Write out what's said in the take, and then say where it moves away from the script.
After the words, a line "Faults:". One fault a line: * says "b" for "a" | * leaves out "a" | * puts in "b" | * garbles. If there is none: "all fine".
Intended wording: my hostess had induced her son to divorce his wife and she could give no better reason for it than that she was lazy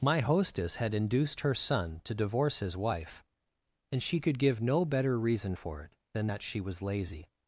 my hostess had induced her son to divorce his wife and she could give no better reason for it than that she was lazy
Faults:
all fine